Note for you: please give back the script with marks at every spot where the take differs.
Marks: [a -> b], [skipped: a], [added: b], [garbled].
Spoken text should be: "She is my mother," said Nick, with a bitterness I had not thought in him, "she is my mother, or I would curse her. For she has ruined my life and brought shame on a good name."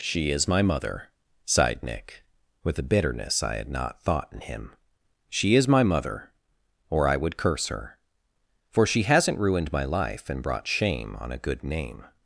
"She is my mother," [said -> sighed] Nick, with a bitterness I had not thought in him, "she is my mother, or I would curse her. For she [has -> hasn't] ruined my life and brought shame on a good name."